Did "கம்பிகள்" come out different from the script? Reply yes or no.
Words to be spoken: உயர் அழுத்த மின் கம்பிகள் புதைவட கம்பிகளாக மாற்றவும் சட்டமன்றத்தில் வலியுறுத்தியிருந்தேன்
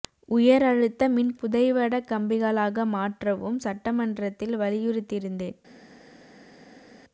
yes